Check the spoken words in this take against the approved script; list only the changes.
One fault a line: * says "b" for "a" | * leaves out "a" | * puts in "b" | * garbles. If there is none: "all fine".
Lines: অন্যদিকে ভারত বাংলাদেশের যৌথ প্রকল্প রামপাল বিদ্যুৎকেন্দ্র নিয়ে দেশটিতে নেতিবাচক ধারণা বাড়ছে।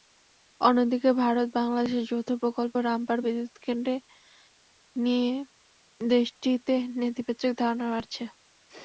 all fine